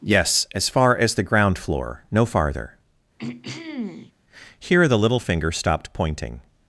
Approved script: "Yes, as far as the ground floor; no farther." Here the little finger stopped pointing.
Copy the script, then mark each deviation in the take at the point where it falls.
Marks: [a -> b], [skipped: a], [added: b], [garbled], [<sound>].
"Yes, as far as the ground floor; no farther." [throat clearing] Here the little finger stopped pointing.